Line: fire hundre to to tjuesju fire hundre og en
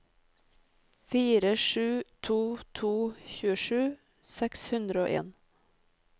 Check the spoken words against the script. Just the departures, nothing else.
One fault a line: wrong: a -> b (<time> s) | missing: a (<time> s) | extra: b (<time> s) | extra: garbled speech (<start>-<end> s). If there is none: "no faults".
wrong: hundre -> sju (1.6 s)
wrong: fire -> seks (4.4 s)